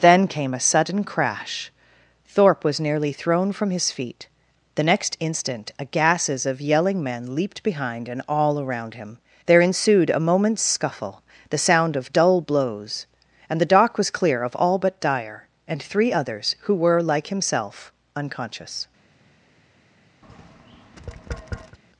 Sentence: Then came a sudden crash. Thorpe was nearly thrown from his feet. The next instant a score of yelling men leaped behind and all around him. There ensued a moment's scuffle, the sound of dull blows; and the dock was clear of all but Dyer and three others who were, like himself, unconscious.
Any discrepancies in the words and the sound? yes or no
yes